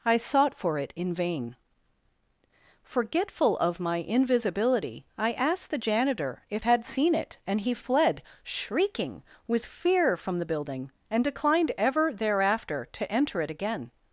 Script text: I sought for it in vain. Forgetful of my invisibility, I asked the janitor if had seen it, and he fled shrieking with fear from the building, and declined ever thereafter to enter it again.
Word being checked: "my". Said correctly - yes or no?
yes